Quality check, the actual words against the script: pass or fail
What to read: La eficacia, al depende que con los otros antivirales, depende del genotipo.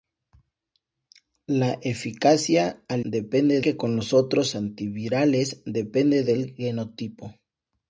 pass